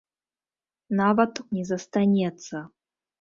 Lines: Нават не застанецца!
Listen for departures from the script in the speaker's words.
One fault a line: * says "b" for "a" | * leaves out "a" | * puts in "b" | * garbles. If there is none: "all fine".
all fine